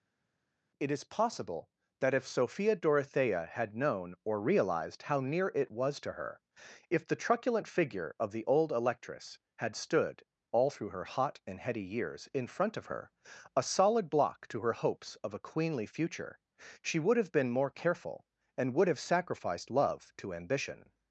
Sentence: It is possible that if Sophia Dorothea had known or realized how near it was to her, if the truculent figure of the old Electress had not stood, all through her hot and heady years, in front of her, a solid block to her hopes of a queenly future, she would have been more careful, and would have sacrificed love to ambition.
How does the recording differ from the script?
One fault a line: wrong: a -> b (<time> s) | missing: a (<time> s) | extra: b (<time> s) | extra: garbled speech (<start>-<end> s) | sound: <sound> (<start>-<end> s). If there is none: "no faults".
missing: not (9.8 s)